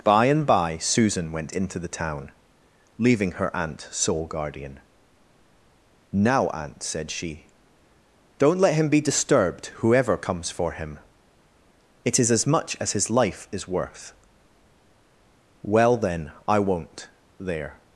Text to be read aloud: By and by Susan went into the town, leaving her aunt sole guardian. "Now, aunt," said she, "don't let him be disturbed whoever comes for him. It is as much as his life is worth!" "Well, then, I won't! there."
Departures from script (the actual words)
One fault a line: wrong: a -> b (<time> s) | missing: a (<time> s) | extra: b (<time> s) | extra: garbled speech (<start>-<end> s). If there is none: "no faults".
no faults